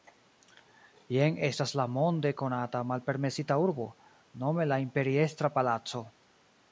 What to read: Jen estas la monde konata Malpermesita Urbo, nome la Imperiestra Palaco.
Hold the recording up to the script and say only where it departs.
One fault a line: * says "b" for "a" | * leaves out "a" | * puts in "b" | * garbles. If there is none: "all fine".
all fine